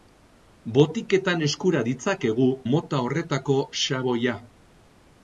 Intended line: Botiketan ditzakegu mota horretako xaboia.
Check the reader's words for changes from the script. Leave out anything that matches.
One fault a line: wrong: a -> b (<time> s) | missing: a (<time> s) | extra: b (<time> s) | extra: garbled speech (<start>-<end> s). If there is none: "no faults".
extra: eskura (1.5 s)